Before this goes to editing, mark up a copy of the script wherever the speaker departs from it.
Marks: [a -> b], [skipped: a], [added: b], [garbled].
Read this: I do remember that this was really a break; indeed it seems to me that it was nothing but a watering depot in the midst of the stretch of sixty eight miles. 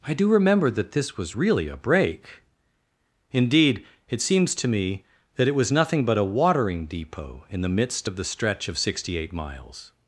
I do remember that this was really a break; indeed it seems to me that it was nothing but a watering depot in the midst of the stretch of sixty eight miles.